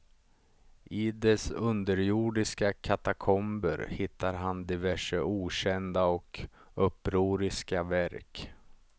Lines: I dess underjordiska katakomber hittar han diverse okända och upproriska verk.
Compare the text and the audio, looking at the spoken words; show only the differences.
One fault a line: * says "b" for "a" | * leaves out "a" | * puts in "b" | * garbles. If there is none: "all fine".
all fine